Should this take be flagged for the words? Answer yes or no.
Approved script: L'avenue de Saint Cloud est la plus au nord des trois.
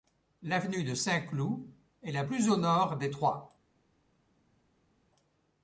no